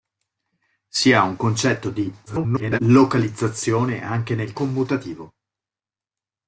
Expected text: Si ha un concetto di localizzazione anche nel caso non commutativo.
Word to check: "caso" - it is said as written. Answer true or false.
false